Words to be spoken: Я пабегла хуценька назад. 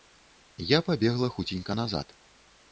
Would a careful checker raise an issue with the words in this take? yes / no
no